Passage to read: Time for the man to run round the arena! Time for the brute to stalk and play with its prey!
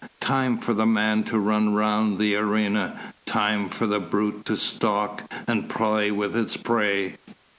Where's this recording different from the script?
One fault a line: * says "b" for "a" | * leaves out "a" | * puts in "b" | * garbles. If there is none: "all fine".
all fine